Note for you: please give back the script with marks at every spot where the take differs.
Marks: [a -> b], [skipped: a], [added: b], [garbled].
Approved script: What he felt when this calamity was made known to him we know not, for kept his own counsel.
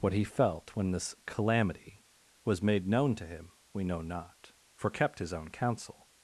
What he felt when this calamity was made known to him we know not, for kept his own counsel.